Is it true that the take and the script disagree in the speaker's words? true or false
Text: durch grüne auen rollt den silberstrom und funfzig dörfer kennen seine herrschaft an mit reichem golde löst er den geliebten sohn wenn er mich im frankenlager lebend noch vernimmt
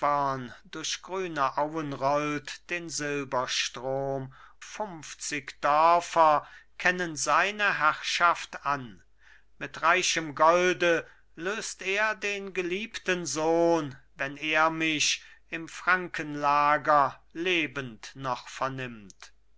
true